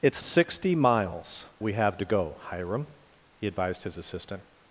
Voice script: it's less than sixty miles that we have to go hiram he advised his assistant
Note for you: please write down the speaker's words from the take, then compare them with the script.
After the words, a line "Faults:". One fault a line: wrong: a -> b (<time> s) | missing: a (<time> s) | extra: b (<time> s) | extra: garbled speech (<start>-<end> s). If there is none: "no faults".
it's sixty miles we have to go hiram he advised his assistant
Faults:
missing: less than (0.2 s)
missing: that (1.5 s)